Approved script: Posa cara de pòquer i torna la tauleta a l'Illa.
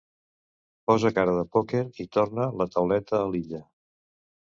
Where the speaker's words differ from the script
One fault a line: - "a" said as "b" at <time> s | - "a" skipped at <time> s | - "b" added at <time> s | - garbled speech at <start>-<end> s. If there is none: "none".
none